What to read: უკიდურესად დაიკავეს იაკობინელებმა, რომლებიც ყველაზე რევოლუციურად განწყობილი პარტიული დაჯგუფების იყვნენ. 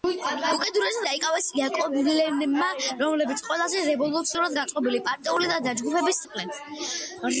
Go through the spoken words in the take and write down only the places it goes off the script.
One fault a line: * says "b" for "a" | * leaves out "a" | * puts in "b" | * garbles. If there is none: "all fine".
all fine